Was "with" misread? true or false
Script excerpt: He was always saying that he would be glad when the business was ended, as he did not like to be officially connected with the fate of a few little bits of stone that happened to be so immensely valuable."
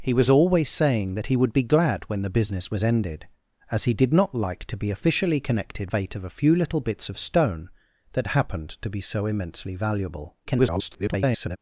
true